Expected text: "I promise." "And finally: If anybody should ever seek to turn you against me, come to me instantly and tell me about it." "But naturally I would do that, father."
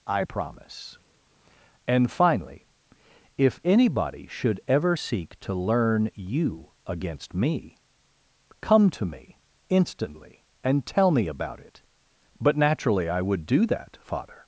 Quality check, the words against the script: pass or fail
fail